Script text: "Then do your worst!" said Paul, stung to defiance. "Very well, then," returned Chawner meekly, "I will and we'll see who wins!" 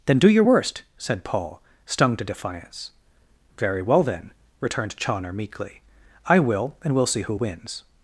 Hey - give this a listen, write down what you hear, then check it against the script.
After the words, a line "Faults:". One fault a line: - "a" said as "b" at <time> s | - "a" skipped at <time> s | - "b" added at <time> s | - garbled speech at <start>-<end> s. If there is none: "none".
"Then do your worst!" said Paul, stung to defiance. "Very well, then," returned Chawner meekly, "I will and we'll see who wins!"
Faults:
none